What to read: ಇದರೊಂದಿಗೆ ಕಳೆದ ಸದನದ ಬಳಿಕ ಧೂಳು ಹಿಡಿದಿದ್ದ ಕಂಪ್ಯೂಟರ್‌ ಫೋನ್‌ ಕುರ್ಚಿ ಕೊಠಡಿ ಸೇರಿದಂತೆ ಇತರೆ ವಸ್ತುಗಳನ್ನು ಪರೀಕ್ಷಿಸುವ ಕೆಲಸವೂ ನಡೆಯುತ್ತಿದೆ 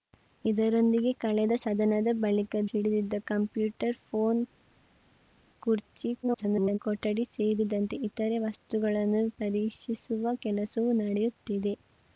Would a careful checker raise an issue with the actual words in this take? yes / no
yes